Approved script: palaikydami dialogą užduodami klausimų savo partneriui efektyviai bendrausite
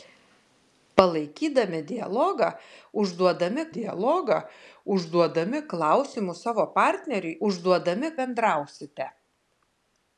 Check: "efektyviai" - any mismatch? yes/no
yes